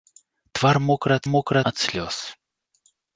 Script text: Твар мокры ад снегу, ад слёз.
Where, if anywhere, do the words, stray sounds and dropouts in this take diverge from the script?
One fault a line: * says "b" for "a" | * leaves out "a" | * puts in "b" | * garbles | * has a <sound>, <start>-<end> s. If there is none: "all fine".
* says "мокры" for "снегу"